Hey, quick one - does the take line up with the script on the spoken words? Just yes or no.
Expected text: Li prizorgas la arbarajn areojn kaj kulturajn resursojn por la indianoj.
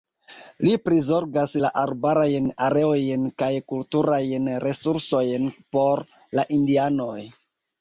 yes